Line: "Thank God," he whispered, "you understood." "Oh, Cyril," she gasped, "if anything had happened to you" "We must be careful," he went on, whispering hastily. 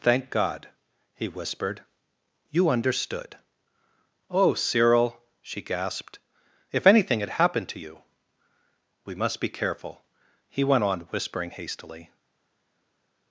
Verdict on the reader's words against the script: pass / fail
pass